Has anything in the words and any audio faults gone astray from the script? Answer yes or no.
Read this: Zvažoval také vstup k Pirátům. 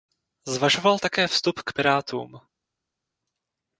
no